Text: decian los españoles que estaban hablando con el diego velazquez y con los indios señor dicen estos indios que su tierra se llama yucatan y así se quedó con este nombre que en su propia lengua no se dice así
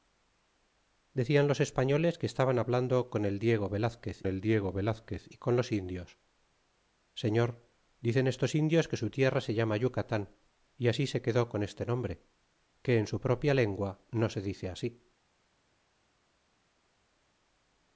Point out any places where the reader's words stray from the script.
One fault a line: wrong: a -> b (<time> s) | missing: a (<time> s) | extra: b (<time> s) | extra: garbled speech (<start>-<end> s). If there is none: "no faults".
extra: el diego velazquez (4.2 s)